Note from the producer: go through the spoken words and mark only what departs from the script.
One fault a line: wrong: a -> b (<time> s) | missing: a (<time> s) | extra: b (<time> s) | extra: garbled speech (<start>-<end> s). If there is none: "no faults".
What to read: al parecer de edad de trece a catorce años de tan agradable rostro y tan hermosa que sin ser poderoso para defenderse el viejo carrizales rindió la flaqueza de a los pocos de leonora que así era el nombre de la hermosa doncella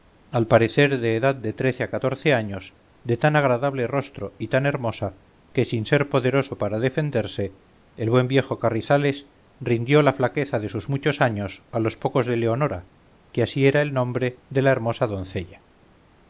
extra: buen (8.1 s)
extra: sus muchos años (10.7 s)